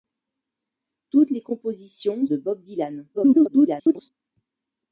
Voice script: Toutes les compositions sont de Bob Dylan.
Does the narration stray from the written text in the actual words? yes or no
yes